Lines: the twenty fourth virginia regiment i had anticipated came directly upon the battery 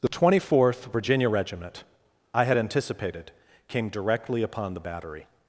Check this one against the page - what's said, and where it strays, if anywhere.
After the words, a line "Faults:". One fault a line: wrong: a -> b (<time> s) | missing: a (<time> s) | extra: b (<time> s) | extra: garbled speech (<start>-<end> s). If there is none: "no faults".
the twenty fourth virginia regiment i had anticipated came directly upon the battery
Faults:
no faults